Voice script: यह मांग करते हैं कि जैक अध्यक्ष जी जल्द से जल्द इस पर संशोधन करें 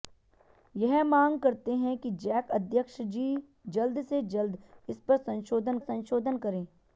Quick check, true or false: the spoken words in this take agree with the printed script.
false